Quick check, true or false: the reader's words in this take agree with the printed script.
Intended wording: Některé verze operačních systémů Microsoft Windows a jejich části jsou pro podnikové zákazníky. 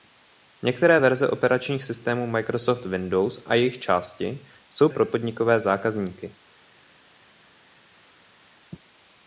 true